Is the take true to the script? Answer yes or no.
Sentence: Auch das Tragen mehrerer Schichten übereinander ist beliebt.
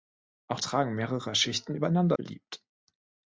no